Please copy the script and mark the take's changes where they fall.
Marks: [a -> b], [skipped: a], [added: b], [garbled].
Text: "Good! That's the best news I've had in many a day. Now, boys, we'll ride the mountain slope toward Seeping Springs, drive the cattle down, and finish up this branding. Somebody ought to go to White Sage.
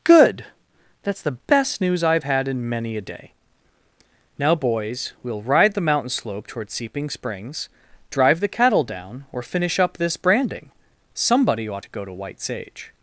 "Good! That's the best news I've had in many a day. Now, boys, we'll ride the mountain slope toward Seeping Springs, drive the cattle down, [and -> or] finish up this branding. Somebody ought to go to White Sage.